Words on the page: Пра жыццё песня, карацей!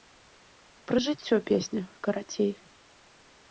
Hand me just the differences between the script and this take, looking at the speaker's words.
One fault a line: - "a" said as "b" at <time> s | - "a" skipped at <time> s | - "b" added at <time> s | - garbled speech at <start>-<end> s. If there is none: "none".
none